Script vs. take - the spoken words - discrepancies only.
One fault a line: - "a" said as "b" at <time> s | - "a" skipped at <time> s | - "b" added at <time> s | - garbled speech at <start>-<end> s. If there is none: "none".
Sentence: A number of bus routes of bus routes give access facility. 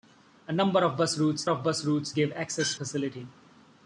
none